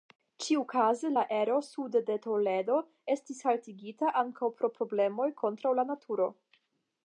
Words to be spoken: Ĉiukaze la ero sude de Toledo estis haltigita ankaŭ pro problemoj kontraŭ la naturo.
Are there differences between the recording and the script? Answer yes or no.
no